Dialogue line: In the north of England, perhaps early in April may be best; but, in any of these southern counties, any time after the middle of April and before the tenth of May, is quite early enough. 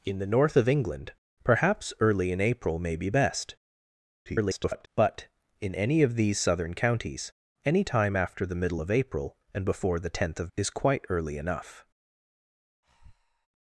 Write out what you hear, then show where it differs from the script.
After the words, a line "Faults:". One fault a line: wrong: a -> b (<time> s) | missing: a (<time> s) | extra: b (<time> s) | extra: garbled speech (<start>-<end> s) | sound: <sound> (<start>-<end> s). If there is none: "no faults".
In the north of England, perhaps early in April may be best; [garbled] but, in any of these southern counties, any time after the middle of April and before the tenth of Is quite early enough.
Faults:
extra: garbled speech (4.3-4.9 s)
missing: May (10.5 s)
sound: breath (12.8-13.5 s)